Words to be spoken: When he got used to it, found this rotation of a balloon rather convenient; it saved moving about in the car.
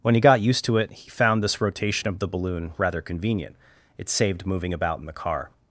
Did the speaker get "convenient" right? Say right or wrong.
right